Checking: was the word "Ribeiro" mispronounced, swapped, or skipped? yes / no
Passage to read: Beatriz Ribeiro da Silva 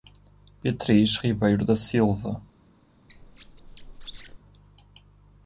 no